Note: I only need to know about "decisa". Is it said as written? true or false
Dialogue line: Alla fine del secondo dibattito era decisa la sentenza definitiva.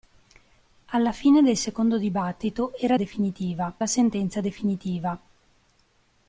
false